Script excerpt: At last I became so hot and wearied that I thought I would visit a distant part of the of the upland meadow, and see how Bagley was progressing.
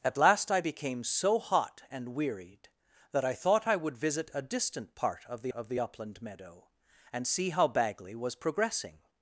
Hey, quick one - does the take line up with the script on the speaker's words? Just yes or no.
yes